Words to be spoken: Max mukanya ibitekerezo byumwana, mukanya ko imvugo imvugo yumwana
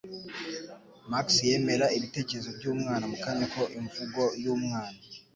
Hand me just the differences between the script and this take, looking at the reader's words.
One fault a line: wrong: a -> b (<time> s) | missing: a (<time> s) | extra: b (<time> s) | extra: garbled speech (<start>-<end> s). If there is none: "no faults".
wrong: mukanya -> yemera (1.5 s)
missing: imvugo (4.2 s)